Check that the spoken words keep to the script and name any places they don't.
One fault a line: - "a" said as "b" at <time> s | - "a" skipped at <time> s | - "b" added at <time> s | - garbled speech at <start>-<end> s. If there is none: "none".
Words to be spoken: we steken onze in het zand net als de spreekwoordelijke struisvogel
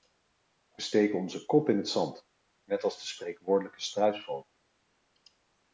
- "kop" added at 1.5 s